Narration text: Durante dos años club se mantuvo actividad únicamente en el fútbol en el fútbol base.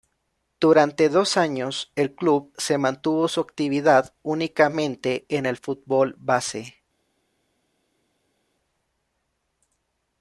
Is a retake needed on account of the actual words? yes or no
yes